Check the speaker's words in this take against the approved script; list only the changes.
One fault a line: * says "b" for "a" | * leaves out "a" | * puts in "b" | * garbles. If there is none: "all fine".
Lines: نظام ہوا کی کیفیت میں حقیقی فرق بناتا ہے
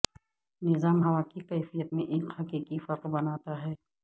* puts in "ایک"